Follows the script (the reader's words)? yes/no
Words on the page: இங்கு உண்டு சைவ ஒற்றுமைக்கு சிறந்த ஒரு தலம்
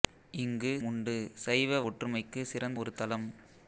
yes